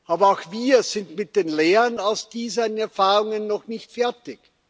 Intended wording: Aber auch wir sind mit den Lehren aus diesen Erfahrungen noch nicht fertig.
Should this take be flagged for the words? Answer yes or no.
no